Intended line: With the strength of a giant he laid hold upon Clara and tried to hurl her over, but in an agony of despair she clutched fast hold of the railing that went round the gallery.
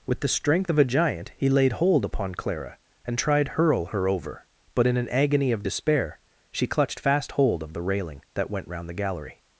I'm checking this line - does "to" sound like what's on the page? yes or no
no